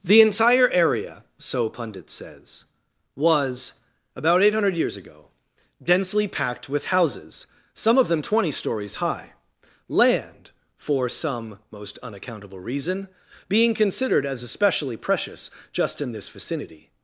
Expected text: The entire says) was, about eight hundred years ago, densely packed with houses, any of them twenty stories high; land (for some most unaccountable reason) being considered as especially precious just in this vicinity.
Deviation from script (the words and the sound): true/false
true